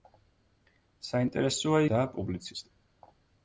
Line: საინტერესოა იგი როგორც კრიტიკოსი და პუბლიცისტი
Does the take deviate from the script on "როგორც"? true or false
true